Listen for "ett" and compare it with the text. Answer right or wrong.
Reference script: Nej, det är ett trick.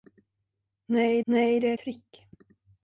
wrong